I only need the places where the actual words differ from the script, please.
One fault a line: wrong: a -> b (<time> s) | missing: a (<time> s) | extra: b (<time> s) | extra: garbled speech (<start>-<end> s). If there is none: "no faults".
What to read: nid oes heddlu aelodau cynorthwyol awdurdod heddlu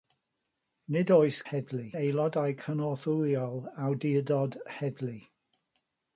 no faults